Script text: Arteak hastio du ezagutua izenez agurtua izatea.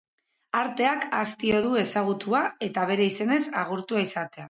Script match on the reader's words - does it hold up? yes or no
no